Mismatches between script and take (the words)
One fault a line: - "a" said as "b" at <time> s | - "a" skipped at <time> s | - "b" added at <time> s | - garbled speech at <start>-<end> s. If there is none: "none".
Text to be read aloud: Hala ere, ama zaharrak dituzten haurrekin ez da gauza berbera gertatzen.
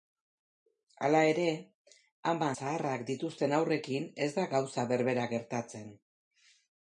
none